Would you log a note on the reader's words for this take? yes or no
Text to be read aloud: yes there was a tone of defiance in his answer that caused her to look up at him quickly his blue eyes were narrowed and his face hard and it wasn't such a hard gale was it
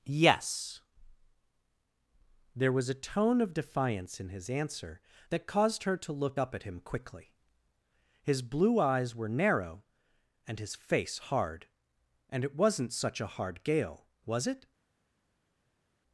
yes